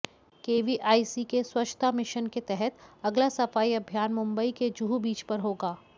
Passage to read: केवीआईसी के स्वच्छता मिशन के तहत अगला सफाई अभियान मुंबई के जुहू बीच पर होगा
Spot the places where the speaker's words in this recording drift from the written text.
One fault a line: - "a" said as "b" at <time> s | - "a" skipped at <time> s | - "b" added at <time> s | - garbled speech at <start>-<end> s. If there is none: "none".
none